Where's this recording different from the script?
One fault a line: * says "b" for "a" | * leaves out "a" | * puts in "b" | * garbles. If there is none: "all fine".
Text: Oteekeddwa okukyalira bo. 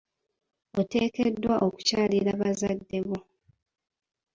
* puts in "bazadde"